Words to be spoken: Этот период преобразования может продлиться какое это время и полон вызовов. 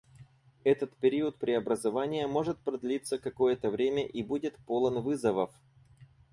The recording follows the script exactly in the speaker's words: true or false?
false